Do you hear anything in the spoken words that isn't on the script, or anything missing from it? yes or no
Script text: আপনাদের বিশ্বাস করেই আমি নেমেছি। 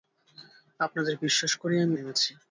no